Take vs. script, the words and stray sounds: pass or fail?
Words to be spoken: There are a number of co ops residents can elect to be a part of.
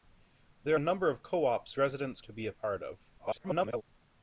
fail